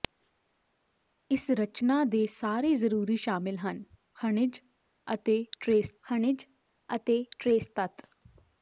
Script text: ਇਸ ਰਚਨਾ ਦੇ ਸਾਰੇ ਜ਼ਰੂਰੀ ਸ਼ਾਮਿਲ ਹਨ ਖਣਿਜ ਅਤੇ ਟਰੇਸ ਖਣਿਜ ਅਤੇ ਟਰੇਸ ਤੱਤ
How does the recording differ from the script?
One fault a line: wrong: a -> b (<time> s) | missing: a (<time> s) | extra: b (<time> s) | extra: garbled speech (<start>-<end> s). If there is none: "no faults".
no faults